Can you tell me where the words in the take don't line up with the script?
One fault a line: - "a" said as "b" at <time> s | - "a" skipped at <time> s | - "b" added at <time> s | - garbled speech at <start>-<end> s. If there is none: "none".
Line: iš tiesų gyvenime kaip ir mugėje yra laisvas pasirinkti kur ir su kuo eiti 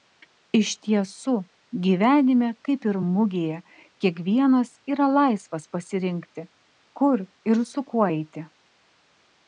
- "kiekvienas" added at 4.0 s